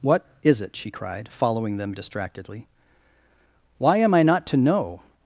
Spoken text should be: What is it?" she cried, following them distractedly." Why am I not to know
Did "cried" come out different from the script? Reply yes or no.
no